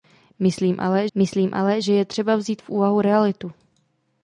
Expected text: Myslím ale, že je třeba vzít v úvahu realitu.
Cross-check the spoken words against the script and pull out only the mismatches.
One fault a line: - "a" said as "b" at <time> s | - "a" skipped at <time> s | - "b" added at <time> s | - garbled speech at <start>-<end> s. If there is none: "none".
- "myslím ale" added at 1.1 s